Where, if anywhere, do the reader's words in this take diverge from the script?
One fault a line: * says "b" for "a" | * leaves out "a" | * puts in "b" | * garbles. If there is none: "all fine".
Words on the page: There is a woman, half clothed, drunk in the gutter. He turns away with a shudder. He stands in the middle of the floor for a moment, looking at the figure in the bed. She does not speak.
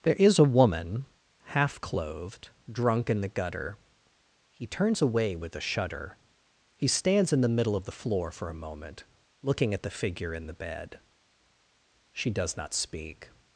all fine